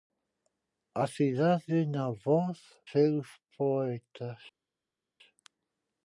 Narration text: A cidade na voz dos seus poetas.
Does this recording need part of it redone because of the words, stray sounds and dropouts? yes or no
yes